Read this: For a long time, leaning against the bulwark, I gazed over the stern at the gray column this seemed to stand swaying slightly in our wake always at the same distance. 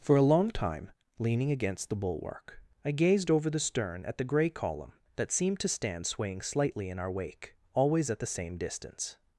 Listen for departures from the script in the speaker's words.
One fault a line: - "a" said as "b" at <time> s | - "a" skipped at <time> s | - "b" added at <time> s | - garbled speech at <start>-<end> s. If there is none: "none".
- "this" said as "that" at 5.2 s